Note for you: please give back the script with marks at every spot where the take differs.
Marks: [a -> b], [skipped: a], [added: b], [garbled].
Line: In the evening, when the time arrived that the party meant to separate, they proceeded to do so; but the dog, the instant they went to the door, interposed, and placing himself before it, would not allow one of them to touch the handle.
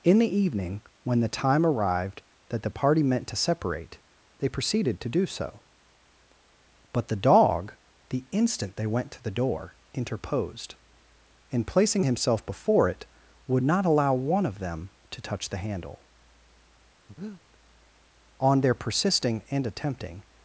In the evening, when the time arrived that the party meant to separate, they proceeded to do so; but the dog, the instant they went to the door, interposed, and placing himself before it, would not allow one of them to touch the handle. [added: On their persisting and attempting]